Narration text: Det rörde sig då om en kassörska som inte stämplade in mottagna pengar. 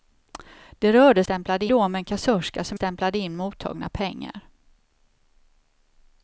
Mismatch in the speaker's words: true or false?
true